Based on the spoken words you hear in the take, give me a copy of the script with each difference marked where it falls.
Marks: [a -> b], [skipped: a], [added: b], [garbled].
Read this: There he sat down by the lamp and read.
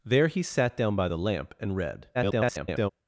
There he sat down by the lamp and read. [garbled]